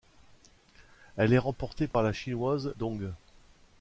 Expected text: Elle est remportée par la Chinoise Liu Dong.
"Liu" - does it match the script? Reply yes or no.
no